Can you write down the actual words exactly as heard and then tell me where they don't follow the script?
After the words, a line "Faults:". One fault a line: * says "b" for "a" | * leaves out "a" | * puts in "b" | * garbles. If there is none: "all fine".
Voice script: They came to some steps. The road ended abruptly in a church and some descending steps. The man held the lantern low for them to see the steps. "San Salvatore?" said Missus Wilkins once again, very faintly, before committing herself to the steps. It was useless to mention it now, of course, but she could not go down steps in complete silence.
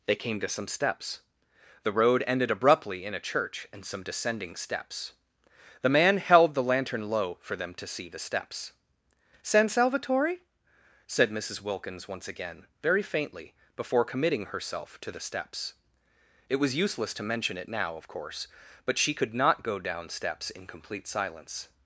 They came to some steps. The road ended abruptly in a church and some descending steps. The man held the lantern low for them to see the steps. "San Salvatore?" said Missus Wilkins once again, very faintly, before committing herself to the steps. It was useless to mention it now, of course, but she could not go down steps in complete silence.
Faults:
all fine